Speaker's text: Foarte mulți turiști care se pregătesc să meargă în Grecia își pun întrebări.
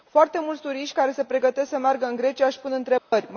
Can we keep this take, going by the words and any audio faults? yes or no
no